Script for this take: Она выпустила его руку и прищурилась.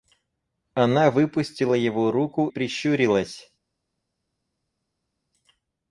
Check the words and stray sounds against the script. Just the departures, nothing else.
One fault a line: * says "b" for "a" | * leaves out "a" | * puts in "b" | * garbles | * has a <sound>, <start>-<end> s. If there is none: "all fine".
* leaves out "и"